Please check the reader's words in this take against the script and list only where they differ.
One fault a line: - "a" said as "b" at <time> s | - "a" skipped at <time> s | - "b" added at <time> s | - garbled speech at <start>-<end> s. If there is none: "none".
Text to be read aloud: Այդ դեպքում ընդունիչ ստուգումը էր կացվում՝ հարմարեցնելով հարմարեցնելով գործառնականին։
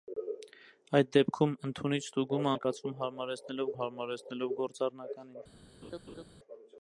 none